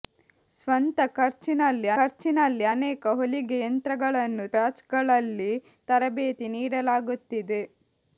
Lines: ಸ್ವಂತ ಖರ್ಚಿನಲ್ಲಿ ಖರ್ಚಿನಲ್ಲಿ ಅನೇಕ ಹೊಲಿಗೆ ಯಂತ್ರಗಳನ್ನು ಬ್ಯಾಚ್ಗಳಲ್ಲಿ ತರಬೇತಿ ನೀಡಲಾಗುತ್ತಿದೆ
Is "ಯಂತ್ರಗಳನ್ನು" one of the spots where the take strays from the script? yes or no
no